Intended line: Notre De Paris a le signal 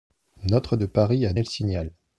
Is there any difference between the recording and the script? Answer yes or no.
no